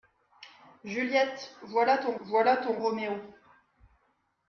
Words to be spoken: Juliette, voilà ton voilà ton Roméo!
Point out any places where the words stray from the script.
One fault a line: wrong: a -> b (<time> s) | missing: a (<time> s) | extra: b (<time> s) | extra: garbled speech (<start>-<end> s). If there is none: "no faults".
no faults